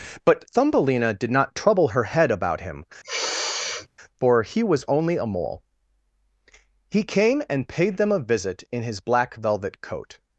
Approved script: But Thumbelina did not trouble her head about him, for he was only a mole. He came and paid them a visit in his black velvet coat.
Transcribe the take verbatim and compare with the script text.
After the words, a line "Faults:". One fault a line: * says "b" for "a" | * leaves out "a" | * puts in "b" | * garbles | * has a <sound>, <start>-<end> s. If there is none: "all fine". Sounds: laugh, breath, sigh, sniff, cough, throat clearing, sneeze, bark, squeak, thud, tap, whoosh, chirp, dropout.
But Thumbelina did not trouble her head about him, for he was only a mole. He came and paid them a visit in his black velvet coat.
Faults:
* has a sniff, 3.0-3.9 s